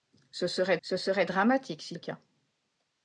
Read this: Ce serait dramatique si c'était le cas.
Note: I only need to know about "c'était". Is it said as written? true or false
false